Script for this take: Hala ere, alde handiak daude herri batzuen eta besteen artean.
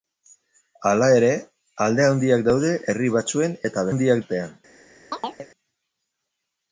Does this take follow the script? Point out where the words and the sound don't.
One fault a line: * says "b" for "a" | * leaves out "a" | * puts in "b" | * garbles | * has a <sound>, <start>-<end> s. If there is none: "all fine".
* says "handiak" for "besteen"
* has a chirp, 5.1-5.5 s